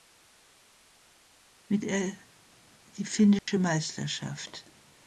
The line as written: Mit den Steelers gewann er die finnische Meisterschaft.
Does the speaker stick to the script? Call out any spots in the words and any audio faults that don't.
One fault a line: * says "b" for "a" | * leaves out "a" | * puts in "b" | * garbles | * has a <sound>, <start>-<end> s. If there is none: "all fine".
* leaves out "den Steelers gewann"
* has a dropout, 3.4-3.5 s